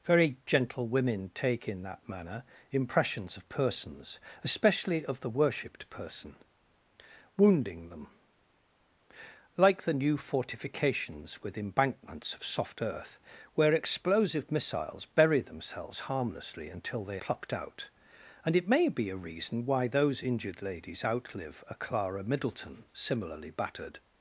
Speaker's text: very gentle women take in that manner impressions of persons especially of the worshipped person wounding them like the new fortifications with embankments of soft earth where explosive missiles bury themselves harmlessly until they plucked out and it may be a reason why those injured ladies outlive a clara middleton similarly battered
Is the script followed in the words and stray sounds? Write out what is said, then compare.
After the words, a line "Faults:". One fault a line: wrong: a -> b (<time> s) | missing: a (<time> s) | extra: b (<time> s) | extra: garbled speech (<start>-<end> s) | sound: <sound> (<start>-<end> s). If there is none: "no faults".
very gentle women take in that manner impressions of persons especially of the worshipped person wounding them like the new fortifications with embankments of soft earth where explosive missiles bury themselves harmlessly until they plucked out and it may be a reason why those injured ladies outlive a clara middleton similarly battered
Faults:
no faults